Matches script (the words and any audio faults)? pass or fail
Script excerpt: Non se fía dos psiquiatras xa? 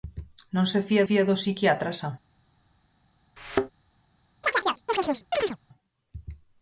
fail